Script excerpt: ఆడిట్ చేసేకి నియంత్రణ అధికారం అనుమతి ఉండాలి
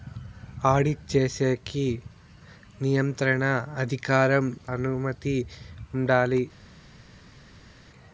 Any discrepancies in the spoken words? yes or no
no